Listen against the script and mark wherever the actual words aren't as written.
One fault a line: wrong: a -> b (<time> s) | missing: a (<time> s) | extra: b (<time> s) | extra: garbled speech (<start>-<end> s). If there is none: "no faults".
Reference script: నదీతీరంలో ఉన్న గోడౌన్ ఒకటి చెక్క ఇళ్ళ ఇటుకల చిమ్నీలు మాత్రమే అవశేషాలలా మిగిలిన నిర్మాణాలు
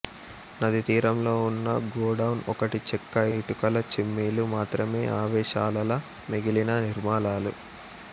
missing: ఇళ్ళ (3.2 s)